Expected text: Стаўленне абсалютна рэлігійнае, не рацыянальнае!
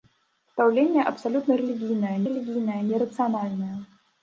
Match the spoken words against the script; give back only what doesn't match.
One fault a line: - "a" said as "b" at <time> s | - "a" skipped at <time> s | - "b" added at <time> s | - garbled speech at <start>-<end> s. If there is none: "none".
- "рэлігійнае" added at 2.3 s